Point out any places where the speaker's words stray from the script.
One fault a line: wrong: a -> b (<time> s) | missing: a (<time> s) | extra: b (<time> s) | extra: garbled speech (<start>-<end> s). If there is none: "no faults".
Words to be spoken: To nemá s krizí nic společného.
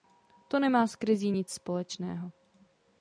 no faults